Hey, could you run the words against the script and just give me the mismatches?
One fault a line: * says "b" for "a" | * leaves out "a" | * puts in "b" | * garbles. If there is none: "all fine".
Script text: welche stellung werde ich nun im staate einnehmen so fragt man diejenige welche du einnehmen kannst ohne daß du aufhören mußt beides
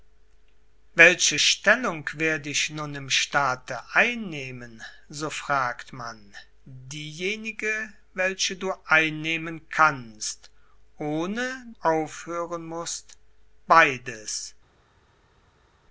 * leaves out "daß du"